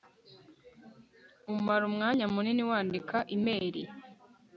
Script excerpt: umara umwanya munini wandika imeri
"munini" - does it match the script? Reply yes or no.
yes